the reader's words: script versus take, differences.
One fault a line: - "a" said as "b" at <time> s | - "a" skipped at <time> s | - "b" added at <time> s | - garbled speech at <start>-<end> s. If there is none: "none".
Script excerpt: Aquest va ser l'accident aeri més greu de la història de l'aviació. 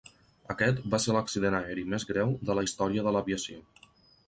none